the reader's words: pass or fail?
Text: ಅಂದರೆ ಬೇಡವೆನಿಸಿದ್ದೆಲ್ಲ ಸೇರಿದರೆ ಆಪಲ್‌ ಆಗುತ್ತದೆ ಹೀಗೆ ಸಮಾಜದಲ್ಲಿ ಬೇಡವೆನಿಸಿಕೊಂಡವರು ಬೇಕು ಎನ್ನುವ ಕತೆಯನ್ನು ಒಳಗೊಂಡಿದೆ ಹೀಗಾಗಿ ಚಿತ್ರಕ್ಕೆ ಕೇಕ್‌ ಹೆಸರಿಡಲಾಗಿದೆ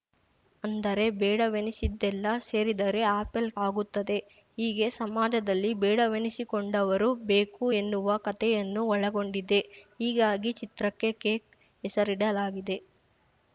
pass